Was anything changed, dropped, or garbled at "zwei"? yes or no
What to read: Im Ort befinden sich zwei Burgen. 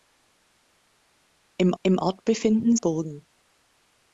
yes